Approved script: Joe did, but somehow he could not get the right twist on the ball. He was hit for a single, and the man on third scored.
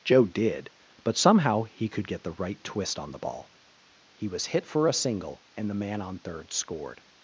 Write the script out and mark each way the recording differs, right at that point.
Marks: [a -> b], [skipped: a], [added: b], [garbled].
Joe did, but somehow he could [skipped: not] get the right twist on the ball. He was hit for a single, and the man on third scored.